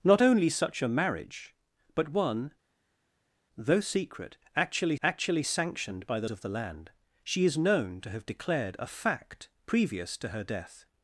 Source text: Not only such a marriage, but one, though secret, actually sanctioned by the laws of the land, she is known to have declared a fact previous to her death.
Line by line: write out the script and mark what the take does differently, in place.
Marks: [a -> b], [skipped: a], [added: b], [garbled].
Not only such a marriage, but one, though secret, actually [added: actually] sanctioned by the [skipped: laws] of the land, she is known to have declared a fact previous to her death.